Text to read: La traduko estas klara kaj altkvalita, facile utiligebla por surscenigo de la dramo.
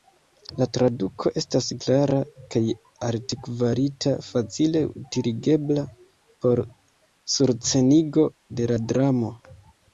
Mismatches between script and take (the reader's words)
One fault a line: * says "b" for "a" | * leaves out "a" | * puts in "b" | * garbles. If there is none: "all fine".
all fine